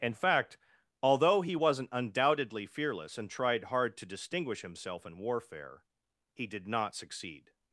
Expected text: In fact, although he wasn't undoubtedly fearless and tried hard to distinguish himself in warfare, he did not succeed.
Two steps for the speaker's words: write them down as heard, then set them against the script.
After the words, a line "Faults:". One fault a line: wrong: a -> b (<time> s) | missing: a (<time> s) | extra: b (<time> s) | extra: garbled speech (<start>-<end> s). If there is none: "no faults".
In fact, although he wasn't undoubtedly fearless and tried hard to distinguish himself in warfare, he did not succeed.
Faults:
no faults